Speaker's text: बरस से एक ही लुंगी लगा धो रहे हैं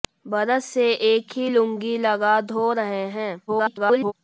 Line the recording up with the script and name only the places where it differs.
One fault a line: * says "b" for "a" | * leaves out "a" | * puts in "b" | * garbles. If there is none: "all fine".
* garbles